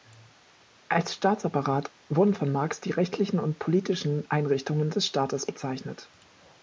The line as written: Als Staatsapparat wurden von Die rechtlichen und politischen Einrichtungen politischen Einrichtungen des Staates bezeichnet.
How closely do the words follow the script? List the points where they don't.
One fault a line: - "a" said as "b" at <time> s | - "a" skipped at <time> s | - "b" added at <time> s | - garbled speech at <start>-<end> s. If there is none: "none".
- "Marx" added at 2.5 s
- "politischen Einrichtungen" skipped at 4.9 s